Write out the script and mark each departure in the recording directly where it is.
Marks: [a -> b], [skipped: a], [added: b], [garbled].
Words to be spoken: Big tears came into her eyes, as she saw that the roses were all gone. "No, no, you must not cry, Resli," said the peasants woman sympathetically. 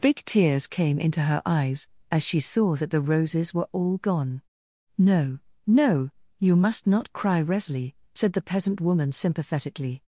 Big tears came into her eyes, as she saw that the roses were all gone. "No, no, you must not cry, Resli," said the [peasants -> peasant] woman sympathetically.